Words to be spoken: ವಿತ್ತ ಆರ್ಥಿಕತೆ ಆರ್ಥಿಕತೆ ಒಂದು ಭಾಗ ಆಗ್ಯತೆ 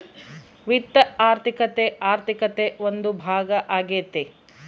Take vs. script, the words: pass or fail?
pass